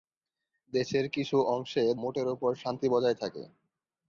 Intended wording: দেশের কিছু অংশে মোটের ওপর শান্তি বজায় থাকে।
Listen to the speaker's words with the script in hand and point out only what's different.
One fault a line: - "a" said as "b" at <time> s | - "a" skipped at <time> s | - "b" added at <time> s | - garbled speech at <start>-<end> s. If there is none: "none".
none